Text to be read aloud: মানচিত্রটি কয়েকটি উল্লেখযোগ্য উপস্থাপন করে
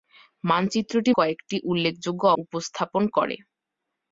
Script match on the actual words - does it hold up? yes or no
yes